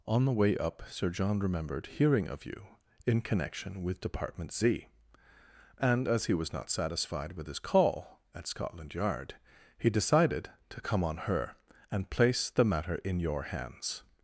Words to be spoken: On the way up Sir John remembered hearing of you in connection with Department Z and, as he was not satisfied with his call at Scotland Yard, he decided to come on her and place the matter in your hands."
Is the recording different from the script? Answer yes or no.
no